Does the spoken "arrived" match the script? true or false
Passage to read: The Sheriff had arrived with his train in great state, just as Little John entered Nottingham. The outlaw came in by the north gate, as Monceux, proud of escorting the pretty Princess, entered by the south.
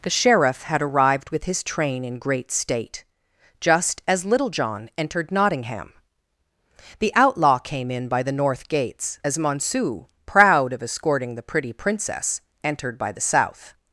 true